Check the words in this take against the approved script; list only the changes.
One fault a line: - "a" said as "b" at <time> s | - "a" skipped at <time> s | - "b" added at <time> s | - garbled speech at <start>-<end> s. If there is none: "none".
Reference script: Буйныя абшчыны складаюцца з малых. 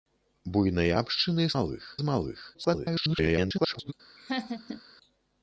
- "складаюцца" said as "малых" at 1.6 s
- garbled speech at 2.5-3.9 s